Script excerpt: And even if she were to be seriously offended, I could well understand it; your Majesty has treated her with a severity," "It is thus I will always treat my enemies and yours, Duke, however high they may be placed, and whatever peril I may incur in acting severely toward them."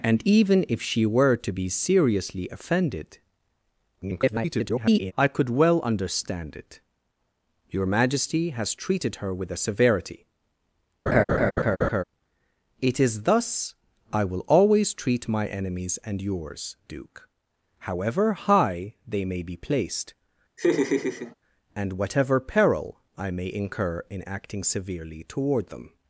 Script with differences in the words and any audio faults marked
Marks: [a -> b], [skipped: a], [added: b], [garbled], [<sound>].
And even if she were to be seriously offended, [garbled] I could well understand it; your Majesty has treated her with a severity," [laugh] "It is thus I will always treat my enemies and yours, Duke, however high they may be placed, [laugh] and whatever peril I may incur in acting severely toward them."